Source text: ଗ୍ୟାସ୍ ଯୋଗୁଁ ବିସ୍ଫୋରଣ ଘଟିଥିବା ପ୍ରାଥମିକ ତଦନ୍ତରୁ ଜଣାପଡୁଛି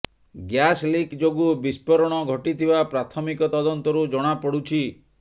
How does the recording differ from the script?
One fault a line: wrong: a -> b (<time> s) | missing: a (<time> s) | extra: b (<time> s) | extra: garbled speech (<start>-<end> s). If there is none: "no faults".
extra: ଲିକ୍ (0.8 s)